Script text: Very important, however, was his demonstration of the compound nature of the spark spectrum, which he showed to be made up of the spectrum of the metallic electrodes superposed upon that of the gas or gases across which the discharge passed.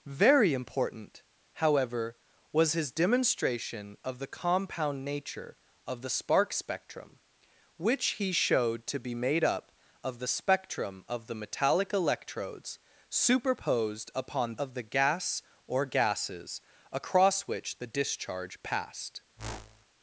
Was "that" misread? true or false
true